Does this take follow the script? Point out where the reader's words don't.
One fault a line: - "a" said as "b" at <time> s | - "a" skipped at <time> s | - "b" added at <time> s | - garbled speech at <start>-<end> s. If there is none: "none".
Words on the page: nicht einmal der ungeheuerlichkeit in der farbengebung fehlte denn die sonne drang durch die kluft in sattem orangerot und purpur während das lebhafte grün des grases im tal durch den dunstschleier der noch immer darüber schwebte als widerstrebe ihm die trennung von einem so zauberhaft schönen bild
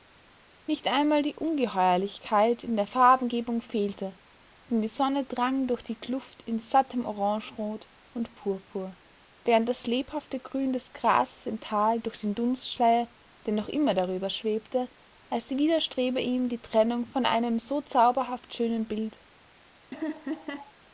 - "der" said as "die" at 1.2 s